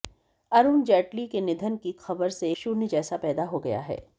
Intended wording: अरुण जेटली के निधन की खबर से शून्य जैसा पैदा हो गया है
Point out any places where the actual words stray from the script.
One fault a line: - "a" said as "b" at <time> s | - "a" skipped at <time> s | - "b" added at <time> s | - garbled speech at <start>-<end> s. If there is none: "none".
none